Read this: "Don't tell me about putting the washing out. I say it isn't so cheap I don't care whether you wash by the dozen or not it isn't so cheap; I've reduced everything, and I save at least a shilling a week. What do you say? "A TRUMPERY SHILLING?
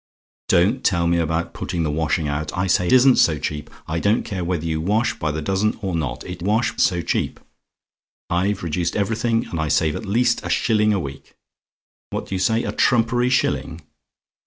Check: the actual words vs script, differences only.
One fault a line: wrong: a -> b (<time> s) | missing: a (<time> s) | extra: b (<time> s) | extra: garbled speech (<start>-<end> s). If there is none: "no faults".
missing: it (2.9 s)
wrong: isn't -> wash (6.4 s)